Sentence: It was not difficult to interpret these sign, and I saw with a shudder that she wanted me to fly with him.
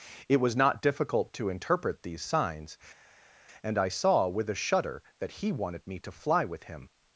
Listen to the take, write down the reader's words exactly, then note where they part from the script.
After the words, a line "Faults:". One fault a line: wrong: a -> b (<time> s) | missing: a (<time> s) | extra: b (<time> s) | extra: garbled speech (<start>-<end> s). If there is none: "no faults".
It was not difficult to interpret these signs, and I saw with a shudder that he wanted me to fly with him.
Faults:
wrong: sign -> signs (2.2 s)
wrong: she -> he (5.3 s)